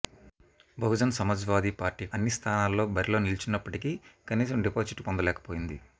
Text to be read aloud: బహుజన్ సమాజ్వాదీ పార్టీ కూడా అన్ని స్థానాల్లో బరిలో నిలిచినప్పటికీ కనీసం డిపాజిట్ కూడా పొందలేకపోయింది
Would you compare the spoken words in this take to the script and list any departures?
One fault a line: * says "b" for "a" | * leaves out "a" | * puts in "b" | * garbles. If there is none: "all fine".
* leaves out "కూడా"
* leaves out "కూడా"